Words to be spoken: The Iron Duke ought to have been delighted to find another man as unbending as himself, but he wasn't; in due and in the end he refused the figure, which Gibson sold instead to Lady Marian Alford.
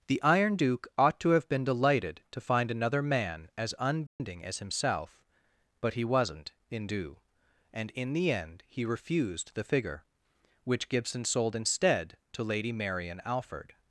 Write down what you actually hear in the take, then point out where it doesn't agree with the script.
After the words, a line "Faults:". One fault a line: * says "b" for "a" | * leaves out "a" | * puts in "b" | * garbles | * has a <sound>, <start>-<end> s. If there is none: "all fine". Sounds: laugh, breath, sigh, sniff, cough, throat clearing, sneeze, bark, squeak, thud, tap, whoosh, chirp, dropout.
The Iron Duke ought to have been delighted to find another man as unbending as himself, but he wasn't; in due and in the end he refused the figure, which Gibson sold instead to Lady Marian Alford.
Faults:
* has a dropout, 4.1-4.2 s